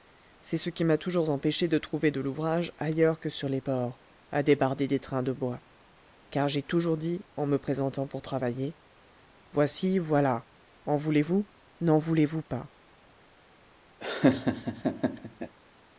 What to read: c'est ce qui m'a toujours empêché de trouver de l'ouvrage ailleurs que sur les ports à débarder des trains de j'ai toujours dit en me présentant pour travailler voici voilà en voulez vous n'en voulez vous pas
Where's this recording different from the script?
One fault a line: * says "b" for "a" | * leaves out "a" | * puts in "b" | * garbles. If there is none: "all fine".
* puts in "bois car"